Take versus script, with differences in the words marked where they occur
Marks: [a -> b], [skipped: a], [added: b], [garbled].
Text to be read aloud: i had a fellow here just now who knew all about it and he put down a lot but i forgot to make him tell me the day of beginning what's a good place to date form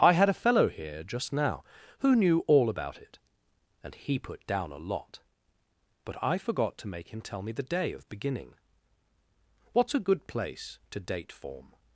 i had a fellow here just now who knew all about it and he put down a lot but i forgot to make him tell me the day of beginning what's a good place to date form